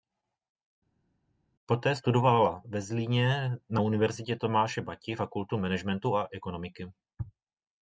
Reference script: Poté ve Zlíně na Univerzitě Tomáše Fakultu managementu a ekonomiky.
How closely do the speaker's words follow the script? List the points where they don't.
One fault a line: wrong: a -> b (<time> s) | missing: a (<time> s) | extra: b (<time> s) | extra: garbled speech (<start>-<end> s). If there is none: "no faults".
extra: studovala (1.9 s)
extra: Bati (4.8 s)